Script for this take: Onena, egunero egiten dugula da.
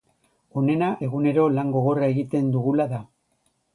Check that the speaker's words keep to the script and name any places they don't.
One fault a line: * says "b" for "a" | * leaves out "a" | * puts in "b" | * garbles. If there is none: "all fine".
* puts in "lan gogorra"